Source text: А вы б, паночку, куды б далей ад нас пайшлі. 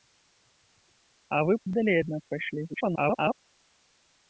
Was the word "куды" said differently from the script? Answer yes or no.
yes